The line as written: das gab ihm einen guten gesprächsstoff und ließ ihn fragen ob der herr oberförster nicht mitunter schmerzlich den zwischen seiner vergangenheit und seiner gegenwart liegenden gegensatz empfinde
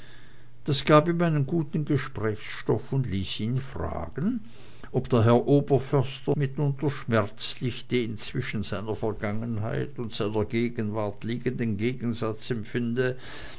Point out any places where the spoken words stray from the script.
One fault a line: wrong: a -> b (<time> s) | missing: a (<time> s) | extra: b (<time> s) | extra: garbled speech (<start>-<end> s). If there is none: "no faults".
missing: nicht (6.3 s)